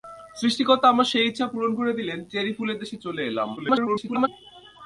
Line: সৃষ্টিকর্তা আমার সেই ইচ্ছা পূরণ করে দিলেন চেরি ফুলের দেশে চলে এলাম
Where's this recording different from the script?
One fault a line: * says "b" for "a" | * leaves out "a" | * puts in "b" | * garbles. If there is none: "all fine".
* garbles